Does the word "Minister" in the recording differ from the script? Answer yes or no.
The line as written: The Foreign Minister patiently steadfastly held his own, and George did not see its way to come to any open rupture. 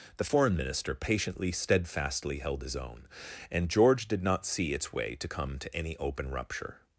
no